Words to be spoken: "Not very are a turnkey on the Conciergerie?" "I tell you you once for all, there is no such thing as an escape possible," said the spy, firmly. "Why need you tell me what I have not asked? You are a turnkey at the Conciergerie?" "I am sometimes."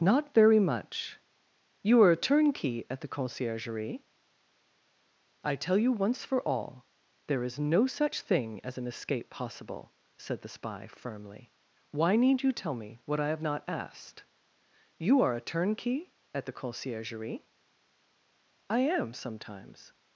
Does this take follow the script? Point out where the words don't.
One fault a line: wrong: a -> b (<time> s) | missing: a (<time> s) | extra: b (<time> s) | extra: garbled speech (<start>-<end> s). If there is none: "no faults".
extra: much You (0.6 s)
wrong: on -> at (2.9 s)
missing: you (5.9 s)